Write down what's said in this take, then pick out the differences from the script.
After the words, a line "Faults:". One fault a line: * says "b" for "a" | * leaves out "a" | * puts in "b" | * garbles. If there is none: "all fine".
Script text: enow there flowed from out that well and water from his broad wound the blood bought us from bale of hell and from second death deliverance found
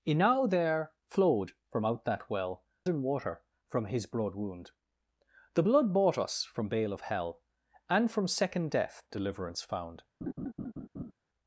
enow there flowed from out that well and water from his broad wound the blood bought us from bale of hell and from second death deliverance found
Faults:
all fine